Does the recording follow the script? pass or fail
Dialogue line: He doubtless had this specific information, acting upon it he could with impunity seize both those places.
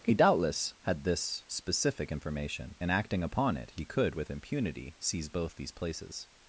fail